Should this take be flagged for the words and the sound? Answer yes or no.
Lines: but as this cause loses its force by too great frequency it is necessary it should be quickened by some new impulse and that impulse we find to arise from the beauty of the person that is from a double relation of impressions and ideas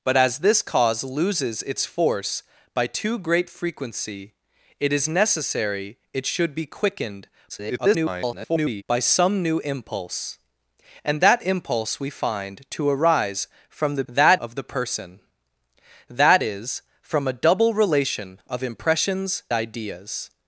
yes